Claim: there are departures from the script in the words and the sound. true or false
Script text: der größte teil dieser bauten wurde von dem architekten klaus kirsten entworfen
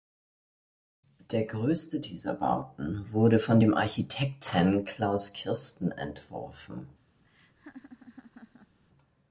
true